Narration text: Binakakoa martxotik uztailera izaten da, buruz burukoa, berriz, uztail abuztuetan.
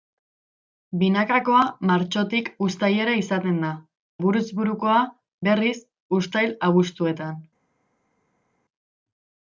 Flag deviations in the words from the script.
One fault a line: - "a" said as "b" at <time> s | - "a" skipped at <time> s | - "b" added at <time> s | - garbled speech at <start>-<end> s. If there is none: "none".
none